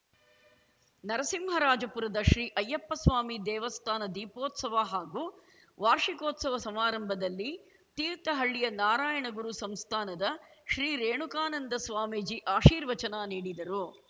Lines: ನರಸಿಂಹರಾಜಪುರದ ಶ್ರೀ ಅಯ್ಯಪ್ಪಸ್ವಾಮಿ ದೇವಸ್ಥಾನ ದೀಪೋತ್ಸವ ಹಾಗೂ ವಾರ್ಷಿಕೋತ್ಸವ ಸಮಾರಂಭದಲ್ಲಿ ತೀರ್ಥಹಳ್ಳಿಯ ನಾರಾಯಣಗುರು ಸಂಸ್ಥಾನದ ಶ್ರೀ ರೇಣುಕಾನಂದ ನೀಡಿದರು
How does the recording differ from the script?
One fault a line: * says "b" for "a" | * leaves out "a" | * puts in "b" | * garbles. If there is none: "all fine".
* puts in "ಸ್ವಾಮೀಜಿ ಆಶೀರ್ವಚನ"